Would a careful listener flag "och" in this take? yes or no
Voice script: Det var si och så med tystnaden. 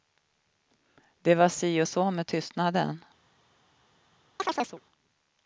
no